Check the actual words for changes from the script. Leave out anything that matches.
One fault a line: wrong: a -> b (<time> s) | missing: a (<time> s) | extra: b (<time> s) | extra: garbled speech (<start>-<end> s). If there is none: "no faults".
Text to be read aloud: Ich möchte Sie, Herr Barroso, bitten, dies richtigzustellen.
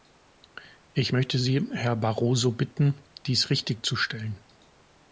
no faults